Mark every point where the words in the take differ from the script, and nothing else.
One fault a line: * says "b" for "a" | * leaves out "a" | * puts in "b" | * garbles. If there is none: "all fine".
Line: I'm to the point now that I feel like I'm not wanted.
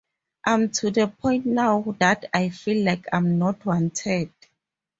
all fine